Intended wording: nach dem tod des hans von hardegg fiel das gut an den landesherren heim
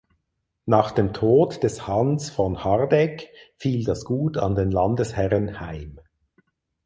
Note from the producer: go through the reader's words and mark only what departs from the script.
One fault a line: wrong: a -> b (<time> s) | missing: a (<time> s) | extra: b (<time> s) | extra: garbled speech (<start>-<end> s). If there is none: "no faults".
no faults